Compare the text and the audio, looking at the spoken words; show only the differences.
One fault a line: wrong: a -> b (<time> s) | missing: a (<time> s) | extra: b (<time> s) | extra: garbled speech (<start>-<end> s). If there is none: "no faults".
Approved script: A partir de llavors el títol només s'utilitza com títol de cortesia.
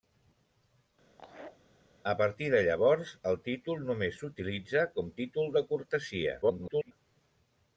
extra: garbled speech (6.4-6.9 s)